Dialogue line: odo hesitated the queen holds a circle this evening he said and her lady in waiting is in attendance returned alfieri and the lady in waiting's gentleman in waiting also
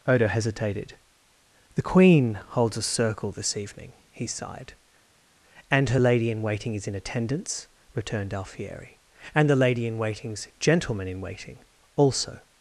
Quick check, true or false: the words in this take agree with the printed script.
false